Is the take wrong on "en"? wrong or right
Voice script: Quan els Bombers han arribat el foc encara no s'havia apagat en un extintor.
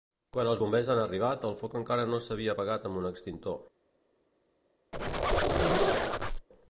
wrong